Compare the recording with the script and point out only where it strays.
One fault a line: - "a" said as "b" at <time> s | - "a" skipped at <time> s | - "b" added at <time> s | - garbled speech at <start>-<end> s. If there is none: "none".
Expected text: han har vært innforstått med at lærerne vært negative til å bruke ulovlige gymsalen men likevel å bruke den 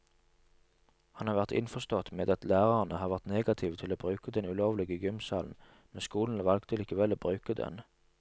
- "har" added at 3.0 s
- "den" added at 4.4 s
- "skolen valgte" added at 6.1 s